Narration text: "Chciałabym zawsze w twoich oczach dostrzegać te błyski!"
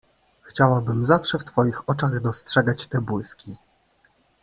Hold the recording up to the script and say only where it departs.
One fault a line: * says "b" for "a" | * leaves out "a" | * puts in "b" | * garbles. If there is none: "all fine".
all fine